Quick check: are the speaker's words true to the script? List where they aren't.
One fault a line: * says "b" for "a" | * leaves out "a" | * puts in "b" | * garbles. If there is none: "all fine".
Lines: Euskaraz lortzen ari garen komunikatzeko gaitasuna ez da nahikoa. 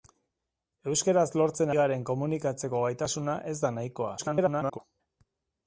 * leaves out "ari"
* garbles